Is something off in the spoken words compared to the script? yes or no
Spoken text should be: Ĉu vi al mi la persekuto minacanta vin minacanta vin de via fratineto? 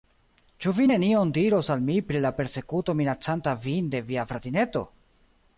yes